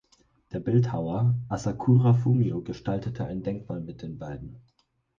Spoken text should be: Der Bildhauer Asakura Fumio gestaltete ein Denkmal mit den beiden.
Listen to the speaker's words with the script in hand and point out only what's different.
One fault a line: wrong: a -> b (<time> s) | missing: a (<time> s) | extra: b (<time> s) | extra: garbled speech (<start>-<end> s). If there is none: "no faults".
no faults